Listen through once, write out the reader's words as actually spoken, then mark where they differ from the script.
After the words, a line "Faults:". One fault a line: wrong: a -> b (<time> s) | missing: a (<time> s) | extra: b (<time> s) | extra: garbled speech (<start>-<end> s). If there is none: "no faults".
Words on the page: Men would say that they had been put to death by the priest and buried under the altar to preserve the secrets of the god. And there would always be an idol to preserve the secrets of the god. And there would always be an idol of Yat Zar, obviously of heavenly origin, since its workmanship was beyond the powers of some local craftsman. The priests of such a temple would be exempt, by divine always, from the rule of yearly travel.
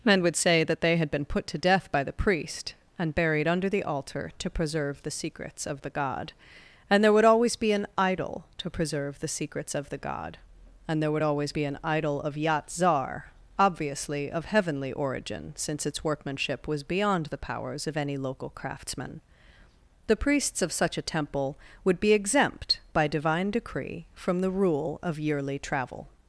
Men would say that they had been put to death by the priest and buried under the altar to preserve the secrets of the god. And there would always be an idol to preserve the secrets of the god. And there would always be an idol of Yat Zar, obviously of heavenly origin, since its workmanship was beyond the powers of any local craftsman. The priests of such a temple would be exempt, by divine decree, from the rule of yearly travel.
Faults:
wrong: some -> any (18.0 s)
wrong: always -> decree (23.5 s)